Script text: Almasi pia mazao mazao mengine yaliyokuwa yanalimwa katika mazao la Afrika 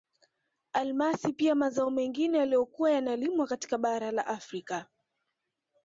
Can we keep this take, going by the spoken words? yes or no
no